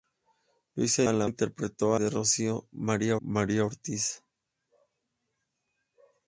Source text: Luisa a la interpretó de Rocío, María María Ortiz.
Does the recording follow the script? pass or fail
pass